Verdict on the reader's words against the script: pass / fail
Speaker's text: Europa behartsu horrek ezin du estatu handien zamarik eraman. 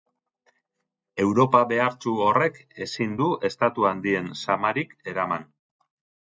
pass